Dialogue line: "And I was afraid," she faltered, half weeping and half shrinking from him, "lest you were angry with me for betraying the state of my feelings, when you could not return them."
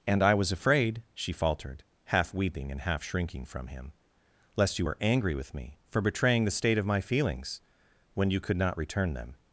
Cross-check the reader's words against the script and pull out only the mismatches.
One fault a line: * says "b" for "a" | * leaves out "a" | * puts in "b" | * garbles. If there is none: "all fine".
all fine